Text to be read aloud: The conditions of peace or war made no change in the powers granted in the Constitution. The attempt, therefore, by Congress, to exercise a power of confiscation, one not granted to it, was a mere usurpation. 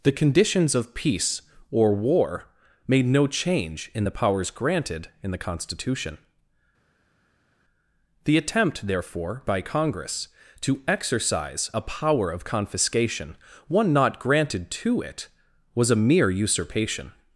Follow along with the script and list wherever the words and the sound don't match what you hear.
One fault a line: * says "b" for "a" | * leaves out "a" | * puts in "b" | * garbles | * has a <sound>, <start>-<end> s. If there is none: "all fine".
all fine